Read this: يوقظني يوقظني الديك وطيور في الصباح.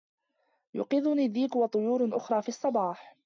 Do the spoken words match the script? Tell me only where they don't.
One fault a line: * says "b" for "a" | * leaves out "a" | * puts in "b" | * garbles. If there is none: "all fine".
* leaves out "يوقظني"
* puts in "أخرى"